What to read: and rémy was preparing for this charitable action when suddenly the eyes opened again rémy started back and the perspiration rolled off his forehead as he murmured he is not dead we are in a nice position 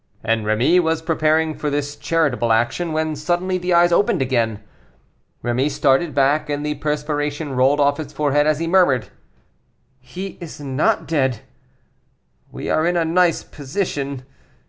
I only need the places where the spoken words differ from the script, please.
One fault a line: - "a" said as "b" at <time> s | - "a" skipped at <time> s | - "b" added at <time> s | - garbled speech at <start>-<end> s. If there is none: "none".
none